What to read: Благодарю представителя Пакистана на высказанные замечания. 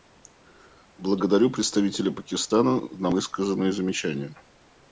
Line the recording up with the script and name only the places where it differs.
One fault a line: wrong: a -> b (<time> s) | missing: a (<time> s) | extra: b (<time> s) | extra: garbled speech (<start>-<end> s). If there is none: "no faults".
no faults